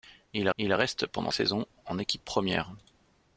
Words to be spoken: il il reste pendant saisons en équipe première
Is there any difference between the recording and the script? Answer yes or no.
no